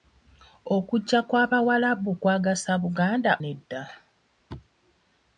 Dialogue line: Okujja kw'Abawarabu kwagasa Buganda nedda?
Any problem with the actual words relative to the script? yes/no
no